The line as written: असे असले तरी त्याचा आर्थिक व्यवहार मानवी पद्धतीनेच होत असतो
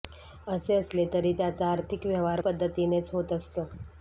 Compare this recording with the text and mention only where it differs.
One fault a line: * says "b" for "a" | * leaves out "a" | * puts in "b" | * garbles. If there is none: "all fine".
* leaves out "मानवी"